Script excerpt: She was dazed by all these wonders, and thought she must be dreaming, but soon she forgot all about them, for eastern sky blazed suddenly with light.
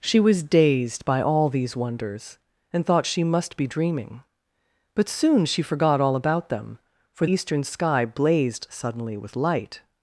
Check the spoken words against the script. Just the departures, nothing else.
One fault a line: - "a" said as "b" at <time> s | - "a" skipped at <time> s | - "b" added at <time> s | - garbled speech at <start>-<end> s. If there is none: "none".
none